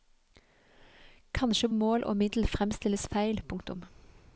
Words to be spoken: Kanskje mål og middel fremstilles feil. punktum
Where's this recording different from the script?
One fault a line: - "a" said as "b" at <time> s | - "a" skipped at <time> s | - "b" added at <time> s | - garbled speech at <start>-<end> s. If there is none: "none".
none